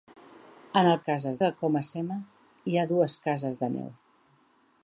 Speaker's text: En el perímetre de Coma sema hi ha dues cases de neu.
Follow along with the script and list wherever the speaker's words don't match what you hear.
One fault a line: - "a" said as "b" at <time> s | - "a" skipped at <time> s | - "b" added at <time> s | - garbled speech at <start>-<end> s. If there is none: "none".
- "perímetre" said as "cases" at 1.1 s